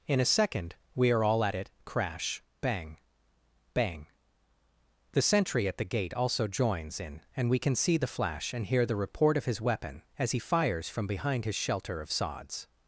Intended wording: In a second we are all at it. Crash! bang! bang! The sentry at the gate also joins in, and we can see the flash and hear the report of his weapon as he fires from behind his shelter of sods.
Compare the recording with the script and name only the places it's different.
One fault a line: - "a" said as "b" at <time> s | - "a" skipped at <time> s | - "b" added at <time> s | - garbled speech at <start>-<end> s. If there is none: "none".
none